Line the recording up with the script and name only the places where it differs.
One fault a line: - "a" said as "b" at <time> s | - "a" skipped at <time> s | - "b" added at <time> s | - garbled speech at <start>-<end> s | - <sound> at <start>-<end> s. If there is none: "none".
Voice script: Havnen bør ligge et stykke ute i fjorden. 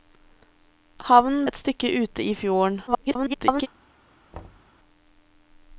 - "bør ligge" skipped at 1.4 s
- garbled speech at 2.9-3.7 s
- thud at 4.3-4.7 s